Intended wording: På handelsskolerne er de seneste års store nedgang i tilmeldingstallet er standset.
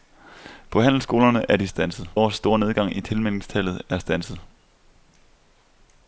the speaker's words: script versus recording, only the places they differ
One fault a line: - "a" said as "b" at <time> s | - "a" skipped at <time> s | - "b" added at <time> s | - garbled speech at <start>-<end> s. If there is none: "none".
- "seneste" said as "standset" at 1.7 s